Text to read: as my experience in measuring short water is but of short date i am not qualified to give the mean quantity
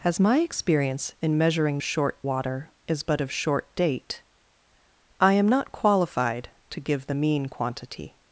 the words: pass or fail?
pass